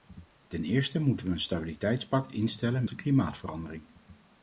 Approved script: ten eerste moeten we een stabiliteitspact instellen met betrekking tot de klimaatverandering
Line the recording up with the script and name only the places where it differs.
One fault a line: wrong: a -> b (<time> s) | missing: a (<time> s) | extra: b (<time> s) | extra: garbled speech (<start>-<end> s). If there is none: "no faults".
missing: met betrekking tot (2.9 s)